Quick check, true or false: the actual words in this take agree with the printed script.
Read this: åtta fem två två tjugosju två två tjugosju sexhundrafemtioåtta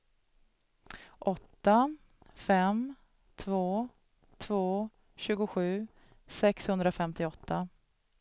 false